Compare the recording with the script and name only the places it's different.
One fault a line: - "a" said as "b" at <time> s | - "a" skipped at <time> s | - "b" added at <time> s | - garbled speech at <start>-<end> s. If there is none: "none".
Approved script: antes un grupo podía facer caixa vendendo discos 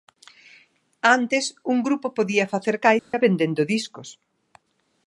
none